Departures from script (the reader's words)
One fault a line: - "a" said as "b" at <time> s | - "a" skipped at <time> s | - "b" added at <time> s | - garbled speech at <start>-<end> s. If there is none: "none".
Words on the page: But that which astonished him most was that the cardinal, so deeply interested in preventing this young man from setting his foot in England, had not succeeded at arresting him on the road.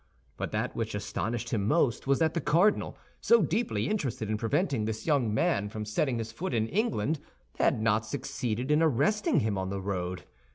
- "at" said as "in" at 8.7 s